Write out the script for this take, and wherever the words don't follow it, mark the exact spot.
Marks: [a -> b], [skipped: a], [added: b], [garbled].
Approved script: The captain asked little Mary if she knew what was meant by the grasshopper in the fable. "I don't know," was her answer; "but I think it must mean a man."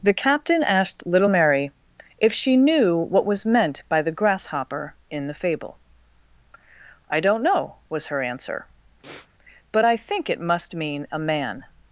The captain asked little Mary if she knew what was meant by the grasshopper in the fable. "I don't know," was her answer; "but I think it must mean a man."